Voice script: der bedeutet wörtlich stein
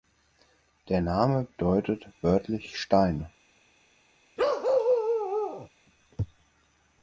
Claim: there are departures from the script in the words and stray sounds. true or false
true